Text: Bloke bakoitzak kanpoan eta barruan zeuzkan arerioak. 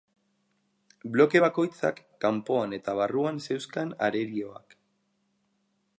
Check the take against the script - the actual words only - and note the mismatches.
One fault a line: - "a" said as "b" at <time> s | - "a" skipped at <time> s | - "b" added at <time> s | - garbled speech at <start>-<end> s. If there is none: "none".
none